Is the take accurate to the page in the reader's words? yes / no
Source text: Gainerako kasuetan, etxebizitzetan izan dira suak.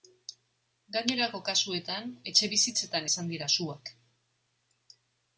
yes